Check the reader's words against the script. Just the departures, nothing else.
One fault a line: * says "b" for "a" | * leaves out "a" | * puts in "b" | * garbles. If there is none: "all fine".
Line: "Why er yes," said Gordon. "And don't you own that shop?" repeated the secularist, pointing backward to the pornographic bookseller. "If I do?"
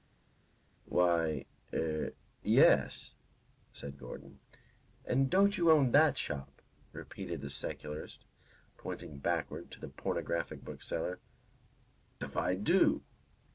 all fine